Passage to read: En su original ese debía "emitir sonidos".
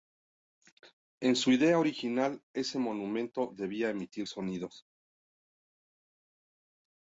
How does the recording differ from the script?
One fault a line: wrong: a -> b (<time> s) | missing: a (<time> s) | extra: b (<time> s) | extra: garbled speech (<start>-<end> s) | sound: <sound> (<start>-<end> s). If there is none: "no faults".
extra: idea (1.5 s)
extra: monumento (2.8 s)